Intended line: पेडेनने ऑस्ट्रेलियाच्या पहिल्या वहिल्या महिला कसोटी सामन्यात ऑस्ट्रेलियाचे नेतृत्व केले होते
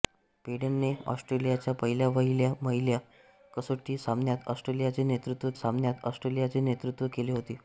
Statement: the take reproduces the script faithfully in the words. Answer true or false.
false